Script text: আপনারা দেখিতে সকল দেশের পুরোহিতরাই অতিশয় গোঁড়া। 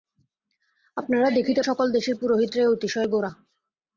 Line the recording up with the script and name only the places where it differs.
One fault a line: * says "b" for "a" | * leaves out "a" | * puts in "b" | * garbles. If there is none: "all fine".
all fine